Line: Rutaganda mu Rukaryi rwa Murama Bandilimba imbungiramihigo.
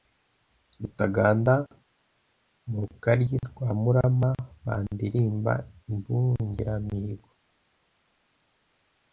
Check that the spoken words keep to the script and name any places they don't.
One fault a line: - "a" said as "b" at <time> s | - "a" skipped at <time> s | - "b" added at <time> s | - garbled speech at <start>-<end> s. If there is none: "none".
none